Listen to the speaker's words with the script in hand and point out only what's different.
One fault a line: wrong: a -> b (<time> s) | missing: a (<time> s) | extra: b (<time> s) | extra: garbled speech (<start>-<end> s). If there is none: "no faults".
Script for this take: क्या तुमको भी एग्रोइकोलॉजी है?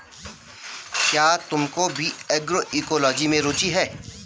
extra: में रुचि (3.3 s)